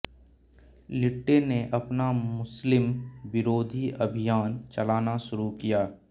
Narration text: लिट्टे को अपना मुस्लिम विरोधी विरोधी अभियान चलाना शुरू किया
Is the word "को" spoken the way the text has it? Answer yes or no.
no